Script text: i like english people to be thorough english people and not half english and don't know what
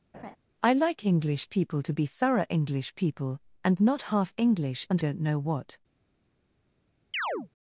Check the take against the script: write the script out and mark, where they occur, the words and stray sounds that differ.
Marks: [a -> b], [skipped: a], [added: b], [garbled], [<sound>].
[laugh] i like english people to be thorough english people and not half english and don't know what [chirp]